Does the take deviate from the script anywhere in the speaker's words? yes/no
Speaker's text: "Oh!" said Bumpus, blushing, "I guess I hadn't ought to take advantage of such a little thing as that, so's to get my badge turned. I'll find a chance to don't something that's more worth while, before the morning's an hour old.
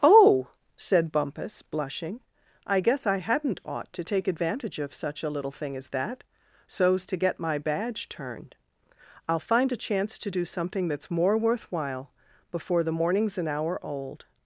yes